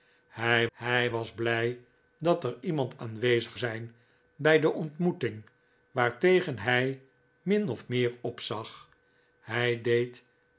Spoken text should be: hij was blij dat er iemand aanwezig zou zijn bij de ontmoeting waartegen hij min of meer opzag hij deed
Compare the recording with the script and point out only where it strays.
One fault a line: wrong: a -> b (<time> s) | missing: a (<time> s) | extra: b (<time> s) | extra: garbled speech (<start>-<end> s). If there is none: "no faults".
extra: hij (0.7 s)
missing: zou (3.6 s)